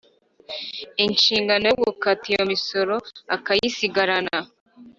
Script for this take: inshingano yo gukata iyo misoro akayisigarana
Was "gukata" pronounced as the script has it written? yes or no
yes